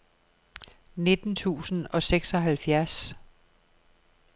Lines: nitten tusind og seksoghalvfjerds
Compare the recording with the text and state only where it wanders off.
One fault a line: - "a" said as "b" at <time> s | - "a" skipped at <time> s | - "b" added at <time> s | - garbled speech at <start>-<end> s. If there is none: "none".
none